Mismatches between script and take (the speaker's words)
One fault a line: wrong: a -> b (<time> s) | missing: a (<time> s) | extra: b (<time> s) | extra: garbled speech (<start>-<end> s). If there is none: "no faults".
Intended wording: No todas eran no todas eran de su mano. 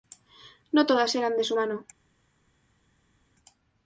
missing: no todas eran (1.4 s)